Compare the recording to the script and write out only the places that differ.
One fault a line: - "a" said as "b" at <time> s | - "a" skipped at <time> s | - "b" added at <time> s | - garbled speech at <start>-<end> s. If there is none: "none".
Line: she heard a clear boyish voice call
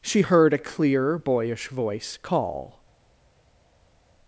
none